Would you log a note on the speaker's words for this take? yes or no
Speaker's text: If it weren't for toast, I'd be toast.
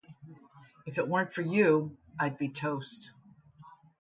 yes